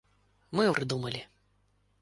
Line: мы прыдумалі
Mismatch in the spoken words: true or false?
false